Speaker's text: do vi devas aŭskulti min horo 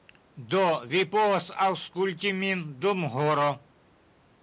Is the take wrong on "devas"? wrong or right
wrong